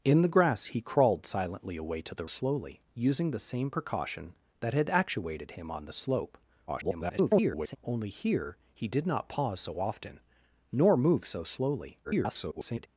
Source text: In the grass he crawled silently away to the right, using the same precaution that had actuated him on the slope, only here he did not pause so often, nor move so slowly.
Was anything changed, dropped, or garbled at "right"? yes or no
yes